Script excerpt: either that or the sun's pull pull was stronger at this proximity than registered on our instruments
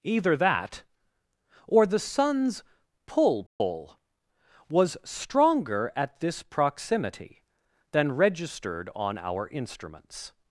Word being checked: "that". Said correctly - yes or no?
yes